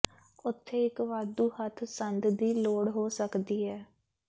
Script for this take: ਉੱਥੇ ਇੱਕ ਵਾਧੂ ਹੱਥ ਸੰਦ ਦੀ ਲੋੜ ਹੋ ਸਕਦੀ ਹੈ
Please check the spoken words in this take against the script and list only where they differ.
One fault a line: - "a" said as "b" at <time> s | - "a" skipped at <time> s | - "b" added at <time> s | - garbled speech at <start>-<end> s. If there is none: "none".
none